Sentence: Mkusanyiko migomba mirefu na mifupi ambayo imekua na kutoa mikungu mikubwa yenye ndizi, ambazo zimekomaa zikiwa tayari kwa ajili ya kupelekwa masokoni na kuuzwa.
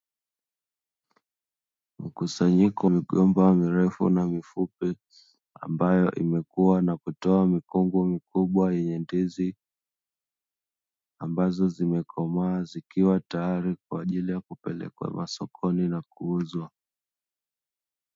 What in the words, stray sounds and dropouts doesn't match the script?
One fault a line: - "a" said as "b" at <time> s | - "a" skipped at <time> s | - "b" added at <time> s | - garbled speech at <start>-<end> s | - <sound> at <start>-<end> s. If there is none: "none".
none